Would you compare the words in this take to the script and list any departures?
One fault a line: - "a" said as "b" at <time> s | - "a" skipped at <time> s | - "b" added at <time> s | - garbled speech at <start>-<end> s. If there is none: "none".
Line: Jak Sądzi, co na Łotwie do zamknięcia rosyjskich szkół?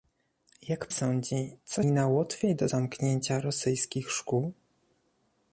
none